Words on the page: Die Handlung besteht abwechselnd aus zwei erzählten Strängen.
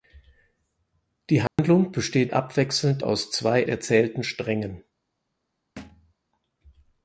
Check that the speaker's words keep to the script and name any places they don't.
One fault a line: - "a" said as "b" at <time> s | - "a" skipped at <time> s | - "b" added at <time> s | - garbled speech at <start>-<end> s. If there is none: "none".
none